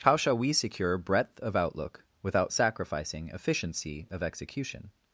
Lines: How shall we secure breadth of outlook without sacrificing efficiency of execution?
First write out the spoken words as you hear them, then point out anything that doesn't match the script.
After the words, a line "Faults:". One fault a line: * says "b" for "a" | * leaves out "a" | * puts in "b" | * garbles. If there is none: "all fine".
How shall we secure breadth of outlook without sacrificing efficiency of execution?
Faults:
all fine